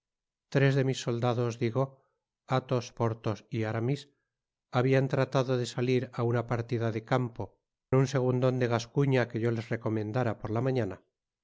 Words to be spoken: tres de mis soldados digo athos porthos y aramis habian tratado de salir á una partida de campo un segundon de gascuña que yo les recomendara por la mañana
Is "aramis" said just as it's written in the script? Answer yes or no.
yes